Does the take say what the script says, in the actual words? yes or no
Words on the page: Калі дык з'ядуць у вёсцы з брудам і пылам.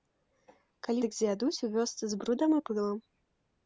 yes